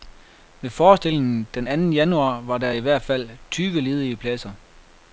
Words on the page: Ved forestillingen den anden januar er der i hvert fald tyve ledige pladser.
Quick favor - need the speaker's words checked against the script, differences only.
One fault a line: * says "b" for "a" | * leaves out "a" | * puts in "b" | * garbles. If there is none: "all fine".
* says "var" for "er"